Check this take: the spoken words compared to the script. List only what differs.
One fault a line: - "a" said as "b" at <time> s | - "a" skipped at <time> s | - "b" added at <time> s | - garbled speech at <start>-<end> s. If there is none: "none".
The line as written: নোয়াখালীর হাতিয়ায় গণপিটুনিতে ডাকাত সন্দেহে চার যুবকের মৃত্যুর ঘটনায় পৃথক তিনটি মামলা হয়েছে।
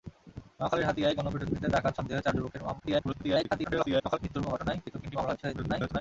- garbled speech at 2.8-4.2 s
- garbled speech at 5.4-6.0 s